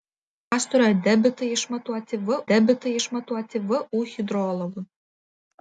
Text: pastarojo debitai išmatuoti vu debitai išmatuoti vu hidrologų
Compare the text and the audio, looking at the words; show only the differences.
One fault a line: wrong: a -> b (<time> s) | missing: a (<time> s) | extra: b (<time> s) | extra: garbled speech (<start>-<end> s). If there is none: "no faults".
no faults